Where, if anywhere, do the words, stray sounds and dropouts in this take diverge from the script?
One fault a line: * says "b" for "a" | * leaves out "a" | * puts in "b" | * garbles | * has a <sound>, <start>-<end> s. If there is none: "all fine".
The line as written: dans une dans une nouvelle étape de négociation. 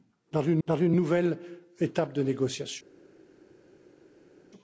all fine